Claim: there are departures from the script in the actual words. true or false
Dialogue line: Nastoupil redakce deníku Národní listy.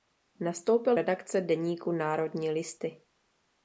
false